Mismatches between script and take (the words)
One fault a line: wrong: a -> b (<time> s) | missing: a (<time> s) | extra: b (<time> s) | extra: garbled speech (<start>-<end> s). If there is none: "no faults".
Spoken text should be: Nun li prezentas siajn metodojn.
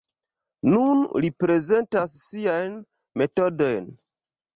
no faults